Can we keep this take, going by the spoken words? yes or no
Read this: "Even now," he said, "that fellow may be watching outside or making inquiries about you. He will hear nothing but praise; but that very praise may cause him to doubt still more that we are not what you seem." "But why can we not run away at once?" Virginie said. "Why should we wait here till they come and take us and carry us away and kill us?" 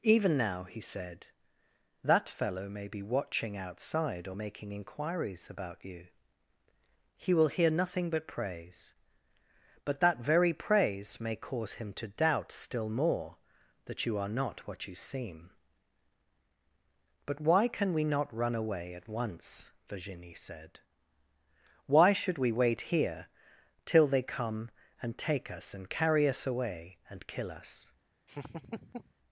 no